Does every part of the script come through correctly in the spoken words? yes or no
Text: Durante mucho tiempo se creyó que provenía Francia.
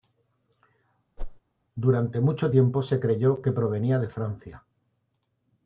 no